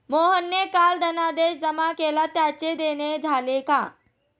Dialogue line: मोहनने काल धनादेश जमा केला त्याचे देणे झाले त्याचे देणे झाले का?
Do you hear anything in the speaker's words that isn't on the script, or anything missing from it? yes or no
yes